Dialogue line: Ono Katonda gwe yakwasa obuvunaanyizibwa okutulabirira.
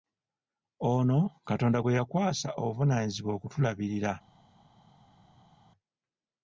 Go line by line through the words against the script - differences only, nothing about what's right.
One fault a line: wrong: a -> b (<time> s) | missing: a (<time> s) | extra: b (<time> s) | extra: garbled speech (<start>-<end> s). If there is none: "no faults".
no faults